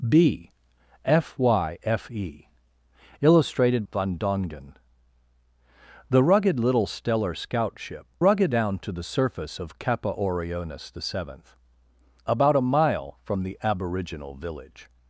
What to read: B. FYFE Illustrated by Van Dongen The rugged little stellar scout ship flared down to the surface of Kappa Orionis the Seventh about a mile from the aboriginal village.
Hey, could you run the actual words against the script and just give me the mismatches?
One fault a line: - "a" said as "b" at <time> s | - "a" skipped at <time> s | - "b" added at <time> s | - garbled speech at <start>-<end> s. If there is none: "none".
- "by" skipped at 3.9 s
- "flared" said as "rugged" at 8.2 s